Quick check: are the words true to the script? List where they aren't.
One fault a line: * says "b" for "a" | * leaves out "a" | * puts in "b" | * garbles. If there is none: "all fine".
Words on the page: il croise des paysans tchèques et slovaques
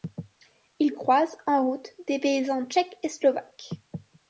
* puts in "en route"